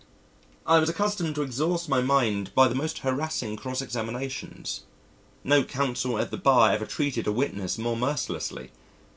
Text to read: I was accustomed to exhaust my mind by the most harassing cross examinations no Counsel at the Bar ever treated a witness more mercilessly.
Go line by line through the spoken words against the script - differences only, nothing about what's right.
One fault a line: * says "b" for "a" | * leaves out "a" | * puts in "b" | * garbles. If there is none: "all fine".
all fine